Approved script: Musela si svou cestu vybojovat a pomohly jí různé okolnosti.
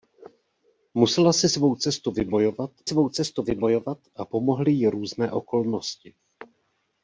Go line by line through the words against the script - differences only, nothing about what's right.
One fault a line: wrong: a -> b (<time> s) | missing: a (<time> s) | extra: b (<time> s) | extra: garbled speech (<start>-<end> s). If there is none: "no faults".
extra: svou cestu vybojovat (2.8 s)